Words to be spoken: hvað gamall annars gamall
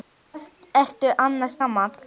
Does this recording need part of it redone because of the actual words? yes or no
yes